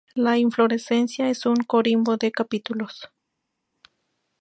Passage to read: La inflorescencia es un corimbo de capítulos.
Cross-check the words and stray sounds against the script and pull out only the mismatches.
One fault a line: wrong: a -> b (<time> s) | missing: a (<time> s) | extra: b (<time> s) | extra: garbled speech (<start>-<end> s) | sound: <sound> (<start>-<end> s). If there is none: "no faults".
no faults